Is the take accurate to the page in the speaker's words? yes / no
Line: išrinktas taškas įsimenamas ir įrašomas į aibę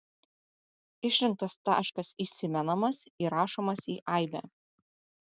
no